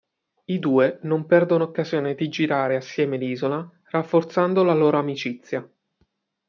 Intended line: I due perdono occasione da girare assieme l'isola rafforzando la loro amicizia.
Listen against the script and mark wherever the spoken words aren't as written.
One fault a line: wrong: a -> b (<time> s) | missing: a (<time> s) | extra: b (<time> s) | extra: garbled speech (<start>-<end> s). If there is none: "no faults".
extra: non (1.0 s)
wrong: da -> di (2.1 s)